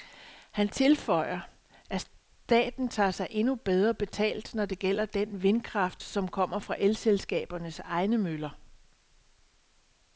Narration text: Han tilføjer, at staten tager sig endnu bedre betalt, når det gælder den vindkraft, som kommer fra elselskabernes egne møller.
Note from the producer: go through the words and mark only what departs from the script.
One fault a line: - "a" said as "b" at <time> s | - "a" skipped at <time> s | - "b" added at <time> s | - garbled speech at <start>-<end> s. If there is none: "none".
none